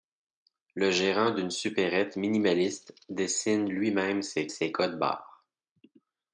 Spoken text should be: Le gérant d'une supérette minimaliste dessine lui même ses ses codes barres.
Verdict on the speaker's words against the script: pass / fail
pass